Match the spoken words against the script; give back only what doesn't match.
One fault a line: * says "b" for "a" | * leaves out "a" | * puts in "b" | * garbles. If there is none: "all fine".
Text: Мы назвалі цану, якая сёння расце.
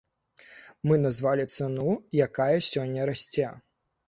all fine